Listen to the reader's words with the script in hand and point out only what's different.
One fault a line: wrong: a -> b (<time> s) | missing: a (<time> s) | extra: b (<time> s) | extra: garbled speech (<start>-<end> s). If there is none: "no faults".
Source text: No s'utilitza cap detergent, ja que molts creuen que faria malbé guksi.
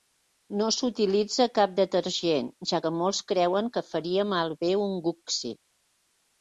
extra: un (4.9 s)